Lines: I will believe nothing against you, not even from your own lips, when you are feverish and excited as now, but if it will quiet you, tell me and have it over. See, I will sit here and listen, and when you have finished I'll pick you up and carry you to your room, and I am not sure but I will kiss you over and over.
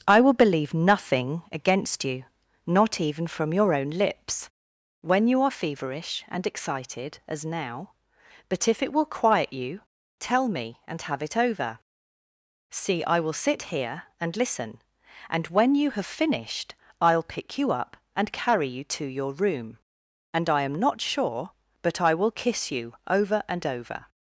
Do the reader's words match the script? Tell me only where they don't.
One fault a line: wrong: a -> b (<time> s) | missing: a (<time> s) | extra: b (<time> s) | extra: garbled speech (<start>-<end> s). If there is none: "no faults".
no faults